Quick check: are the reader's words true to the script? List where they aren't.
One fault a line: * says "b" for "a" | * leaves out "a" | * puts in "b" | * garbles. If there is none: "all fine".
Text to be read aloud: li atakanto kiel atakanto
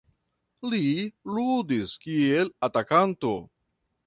* says "ludis" for "atakanto"